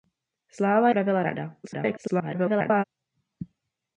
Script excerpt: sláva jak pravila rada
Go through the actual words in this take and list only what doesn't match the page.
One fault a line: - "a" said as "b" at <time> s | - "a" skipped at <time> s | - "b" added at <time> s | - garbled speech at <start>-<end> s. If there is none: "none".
- "jak" skipped at 0.9 s
- garbled speech at 1.6-2.8 s